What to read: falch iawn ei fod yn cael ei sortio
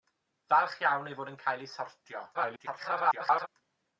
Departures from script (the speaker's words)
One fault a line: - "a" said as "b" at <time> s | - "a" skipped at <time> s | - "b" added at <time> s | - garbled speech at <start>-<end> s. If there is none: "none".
- garbled speech at 2.3-3.5 s